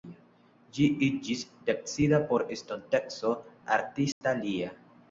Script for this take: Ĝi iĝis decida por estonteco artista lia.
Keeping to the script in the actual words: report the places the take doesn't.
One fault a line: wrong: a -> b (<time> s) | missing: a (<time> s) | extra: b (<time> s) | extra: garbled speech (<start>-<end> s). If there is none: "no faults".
no faults